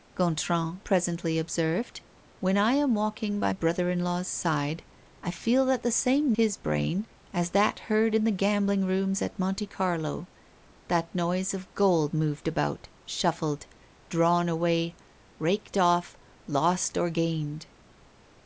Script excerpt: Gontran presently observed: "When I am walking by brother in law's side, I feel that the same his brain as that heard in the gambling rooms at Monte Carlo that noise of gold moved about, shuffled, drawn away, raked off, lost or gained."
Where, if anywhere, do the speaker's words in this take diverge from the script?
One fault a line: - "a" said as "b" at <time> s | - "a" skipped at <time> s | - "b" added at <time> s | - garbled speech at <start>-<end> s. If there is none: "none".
none